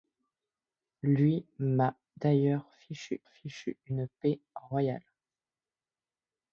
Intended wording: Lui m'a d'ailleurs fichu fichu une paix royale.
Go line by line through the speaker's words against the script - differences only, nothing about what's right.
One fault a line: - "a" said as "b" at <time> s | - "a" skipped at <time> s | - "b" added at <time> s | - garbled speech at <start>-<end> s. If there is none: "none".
none